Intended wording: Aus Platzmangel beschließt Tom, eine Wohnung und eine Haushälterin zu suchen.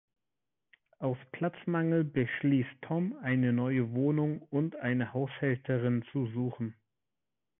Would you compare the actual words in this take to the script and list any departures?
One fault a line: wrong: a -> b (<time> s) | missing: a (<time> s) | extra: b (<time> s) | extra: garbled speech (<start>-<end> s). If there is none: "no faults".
extra: neue (3.5 s)